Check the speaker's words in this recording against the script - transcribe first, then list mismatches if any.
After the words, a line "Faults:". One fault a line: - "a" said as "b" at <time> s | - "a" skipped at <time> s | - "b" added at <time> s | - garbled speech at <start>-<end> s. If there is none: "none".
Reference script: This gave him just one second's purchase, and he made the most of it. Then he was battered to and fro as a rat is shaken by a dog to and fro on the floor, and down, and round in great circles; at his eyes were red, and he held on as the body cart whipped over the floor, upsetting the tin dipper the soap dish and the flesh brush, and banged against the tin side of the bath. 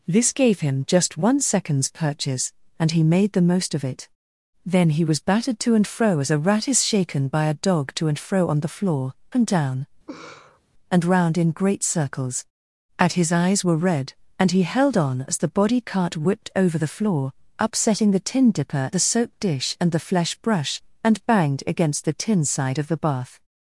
This gave him just one second's purchase, and he made the most of it. Then he was battered to and fro as a rat is shaken by a dog to and fro on the floor, and down, and round in great circles; at his eyes were red, and he held on as the body cart whipped over the floor, upsetting the tin dipper the soap dish and the flesh brush, and banged against the tin side of the bath.
Faults:
none